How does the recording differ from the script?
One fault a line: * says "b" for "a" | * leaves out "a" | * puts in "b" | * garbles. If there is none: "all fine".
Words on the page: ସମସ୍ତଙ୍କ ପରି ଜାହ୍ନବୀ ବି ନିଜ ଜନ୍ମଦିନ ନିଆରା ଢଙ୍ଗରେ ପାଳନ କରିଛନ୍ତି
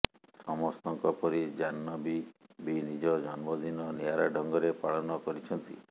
all fine